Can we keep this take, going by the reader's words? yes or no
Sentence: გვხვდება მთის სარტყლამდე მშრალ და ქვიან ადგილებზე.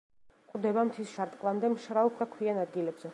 yes